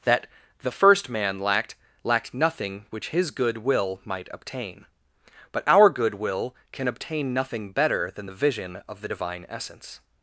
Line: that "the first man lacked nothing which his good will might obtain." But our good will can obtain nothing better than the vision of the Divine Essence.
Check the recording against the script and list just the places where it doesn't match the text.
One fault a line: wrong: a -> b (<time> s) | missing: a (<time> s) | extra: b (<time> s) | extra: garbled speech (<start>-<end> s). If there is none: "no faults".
extra: lacked (2.0 s)